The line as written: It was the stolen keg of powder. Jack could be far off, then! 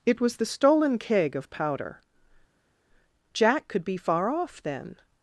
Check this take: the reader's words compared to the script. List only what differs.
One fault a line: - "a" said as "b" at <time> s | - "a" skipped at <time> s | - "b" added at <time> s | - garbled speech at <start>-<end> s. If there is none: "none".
none